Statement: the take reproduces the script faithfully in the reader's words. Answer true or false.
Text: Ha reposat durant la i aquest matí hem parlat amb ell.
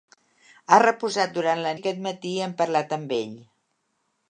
true